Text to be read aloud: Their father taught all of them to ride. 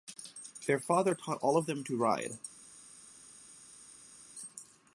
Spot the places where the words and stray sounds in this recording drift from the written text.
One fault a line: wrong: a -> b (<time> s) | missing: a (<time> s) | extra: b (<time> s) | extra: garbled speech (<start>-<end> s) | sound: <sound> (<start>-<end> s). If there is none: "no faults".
no faults